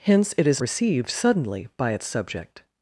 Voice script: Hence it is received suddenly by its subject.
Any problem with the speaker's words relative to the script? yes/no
no